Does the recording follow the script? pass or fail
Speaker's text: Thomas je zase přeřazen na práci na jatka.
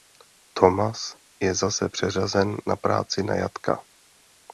pass